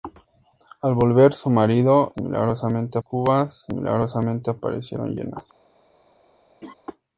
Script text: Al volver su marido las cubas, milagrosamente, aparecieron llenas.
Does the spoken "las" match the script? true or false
false